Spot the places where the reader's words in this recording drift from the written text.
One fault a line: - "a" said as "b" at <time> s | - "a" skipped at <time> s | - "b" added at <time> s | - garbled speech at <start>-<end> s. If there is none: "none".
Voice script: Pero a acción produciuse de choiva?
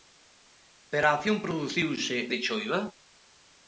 none